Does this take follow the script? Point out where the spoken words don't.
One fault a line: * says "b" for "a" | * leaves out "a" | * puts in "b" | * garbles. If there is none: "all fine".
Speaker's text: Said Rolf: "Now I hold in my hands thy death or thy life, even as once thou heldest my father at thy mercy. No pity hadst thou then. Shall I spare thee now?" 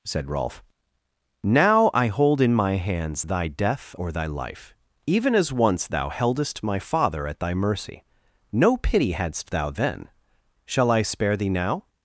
all fine